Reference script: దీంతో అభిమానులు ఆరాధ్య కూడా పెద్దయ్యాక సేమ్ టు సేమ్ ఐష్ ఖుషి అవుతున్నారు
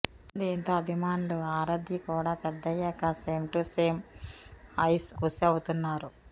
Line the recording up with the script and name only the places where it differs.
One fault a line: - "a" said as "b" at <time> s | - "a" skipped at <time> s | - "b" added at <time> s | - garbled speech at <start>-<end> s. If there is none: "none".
none